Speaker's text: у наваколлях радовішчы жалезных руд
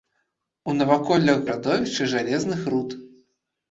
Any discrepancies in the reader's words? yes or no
no